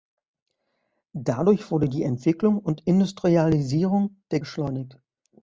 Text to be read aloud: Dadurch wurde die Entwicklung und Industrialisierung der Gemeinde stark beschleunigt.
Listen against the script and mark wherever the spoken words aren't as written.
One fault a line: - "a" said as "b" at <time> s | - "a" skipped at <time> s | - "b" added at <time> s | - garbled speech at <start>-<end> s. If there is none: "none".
- "Gemeinde stark" skipped at 4.4 s